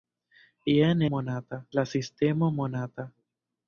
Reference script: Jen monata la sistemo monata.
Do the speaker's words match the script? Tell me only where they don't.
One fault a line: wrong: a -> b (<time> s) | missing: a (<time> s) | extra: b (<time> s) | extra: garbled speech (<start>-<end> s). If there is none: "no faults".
no faults